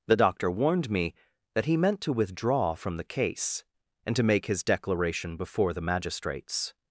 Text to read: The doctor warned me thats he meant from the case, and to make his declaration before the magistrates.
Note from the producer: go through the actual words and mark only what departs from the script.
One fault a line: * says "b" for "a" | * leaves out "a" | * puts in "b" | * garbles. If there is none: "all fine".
* says "that" for "thats"
* puts in "to withdraw"